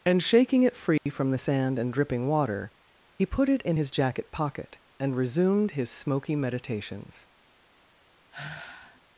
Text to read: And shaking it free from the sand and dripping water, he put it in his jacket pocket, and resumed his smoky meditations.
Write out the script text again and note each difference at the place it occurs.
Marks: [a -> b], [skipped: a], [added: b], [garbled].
And shaking it free from the sand and dripping water, he put it in his jacket pocket, and resumed his smoky meditations.